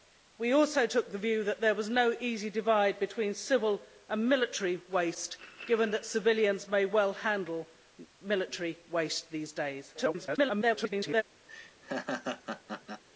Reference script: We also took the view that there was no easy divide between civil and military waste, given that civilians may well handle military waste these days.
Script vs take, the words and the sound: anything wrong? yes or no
yes